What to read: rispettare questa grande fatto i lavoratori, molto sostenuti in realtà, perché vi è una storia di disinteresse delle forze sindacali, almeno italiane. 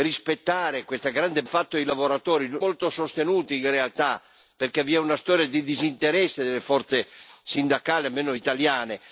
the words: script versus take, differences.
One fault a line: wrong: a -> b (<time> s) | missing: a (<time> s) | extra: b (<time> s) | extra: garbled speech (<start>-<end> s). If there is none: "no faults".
no faults